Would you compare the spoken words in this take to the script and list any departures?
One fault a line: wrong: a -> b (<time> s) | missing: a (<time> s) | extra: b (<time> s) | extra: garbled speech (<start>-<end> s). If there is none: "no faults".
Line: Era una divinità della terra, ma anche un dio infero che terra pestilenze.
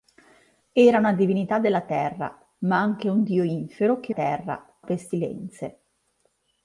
no faults